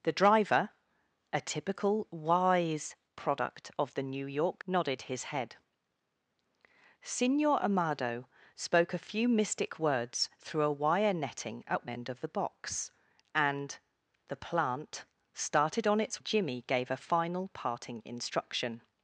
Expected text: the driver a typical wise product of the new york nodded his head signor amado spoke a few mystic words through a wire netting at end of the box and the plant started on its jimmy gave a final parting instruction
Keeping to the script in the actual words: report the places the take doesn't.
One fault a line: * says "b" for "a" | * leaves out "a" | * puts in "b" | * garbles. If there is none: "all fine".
all fine